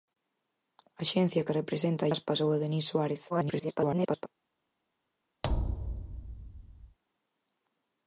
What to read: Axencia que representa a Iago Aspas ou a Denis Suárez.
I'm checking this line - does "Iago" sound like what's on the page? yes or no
no